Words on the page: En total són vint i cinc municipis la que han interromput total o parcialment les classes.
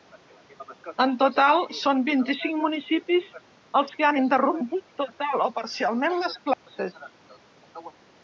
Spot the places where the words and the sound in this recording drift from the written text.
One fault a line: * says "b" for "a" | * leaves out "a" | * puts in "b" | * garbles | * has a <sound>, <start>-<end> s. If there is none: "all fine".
* says "els" for "la"
* has a dropout, 6.5-6.7 s